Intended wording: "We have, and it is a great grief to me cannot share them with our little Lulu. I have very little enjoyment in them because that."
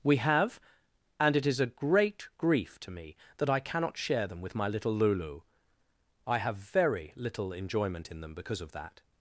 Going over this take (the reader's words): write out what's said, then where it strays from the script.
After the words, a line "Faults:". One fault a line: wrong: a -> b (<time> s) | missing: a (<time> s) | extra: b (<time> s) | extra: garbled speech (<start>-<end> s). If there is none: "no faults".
"We have, and it is a great grief to me that I cannot share them with my little Lulu. I have very little enjoyment in them because of that."
Faults:
extra: that I (3.4 s)
wrong: our -> my (4.5 s)
extra: of (8.6 s)